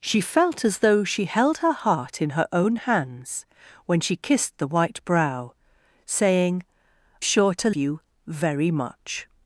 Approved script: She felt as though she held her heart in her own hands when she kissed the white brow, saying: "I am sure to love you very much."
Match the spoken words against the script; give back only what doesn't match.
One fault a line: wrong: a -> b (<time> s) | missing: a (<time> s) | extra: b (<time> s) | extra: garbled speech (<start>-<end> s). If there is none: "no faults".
missing: I am (6.6 s)
missing: love (7.7 s)